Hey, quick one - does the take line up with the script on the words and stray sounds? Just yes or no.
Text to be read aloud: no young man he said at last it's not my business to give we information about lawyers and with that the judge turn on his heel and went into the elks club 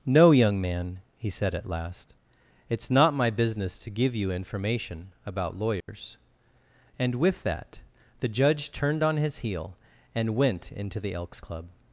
no